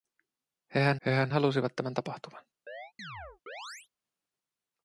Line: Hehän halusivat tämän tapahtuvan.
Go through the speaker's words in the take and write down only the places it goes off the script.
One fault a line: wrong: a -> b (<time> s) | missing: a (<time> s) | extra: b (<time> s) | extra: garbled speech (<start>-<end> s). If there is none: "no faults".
extra: hehän (1.1 s)